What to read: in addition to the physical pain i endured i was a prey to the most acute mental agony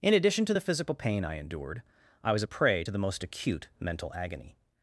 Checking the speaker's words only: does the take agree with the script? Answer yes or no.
yes